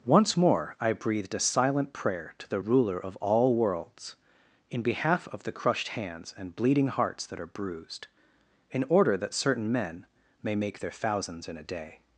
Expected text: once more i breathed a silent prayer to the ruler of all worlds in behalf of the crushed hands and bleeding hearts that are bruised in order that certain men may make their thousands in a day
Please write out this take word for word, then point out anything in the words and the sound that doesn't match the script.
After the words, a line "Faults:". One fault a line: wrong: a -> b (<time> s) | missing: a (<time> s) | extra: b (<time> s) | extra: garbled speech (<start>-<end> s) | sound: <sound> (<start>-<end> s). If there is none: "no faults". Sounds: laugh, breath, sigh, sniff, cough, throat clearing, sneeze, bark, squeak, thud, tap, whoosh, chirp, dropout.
once more i breathed a silent prayer to the ruler of all worlds in behalf of the crushed hands and bleeding hearts that are bruised in order that certain men may make their thousands in a day
Faults:
no faults